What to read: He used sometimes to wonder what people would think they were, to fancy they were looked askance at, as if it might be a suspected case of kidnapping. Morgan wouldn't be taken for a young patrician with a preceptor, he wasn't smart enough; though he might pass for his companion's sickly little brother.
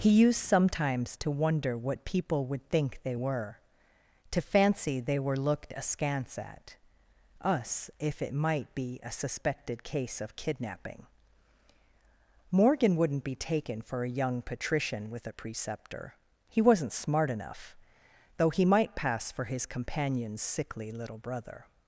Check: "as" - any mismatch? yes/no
yes